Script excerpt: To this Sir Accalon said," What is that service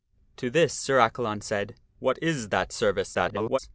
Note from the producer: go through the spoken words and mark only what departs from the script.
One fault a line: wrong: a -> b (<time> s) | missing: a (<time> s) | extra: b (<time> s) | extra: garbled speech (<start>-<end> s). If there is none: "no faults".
extra: garbled speech (3.1-3.6 s)